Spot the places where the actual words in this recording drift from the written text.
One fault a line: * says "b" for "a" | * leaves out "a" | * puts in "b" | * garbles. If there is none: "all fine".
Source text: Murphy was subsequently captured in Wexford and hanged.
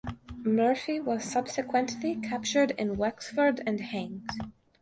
all fine